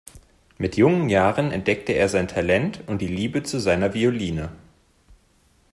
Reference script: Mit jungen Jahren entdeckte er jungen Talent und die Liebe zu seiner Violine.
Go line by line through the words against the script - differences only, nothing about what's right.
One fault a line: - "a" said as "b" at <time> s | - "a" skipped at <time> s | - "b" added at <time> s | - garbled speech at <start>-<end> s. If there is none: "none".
- "jungen" said as "sein" at 2.1 s